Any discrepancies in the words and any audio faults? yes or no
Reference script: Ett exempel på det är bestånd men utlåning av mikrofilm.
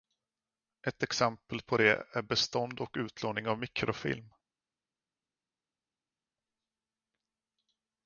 yes